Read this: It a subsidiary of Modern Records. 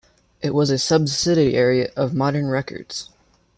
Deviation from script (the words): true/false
true